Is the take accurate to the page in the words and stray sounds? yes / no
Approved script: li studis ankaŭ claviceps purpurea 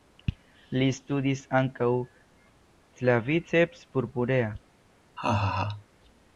no